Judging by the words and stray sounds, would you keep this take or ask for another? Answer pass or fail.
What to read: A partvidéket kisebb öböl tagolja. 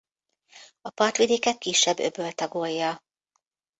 pass